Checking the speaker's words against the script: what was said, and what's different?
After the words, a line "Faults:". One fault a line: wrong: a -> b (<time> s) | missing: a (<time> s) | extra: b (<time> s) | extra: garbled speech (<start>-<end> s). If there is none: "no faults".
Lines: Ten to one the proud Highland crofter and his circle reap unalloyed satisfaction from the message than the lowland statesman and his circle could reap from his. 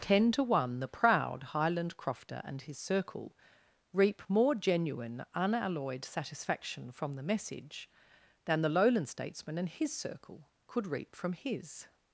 Ten to one the proud Highland crofter and his circle reap more genuine, unalloyed satisfaction from the message than the lowland statesman and his circle could reap from his.
Faults:
extra: more genuine (4.3 s)